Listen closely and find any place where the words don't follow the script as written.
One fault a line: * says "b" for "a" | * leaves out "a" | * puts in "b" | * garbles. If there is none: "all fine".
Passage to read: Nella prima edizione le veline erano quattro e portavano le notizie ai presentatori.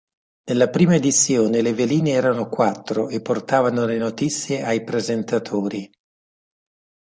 all fine